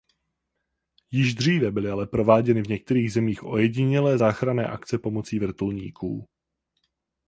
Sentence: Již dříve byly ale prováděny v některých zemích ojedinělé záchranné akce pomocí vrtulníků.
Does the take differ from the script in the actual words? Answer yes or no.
no